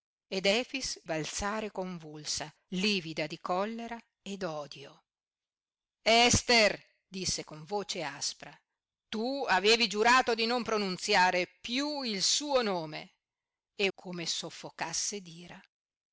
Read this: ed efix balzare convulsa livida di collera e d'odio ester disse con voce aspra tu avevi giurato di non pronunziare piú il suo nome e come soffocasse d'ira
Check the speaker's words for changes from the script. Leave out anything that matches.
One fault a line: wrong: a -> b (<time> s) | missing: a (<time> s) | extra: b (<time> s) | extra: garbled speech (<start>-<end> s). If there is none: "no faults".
no faults